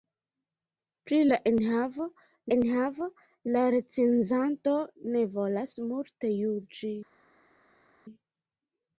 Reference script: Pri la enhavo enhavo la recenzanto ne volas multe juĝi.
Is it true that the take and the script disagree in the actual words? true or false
false